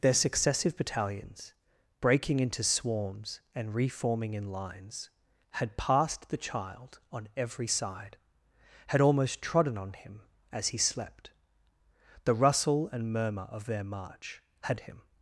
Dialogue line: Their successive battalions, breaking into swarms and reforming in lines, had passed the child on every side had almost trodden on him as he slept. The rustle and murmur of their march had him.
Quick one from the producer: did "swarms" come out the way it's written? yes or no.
yes